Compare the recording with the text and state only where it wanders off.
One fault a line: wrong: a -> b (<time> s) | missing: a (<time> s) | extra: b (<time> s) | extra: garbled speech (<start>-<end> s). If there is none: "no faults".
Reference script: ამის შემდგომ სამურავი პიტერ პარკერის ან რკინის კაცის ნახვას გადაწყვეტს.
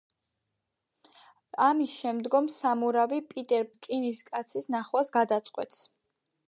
missing: პარკერის ან (3.7 s)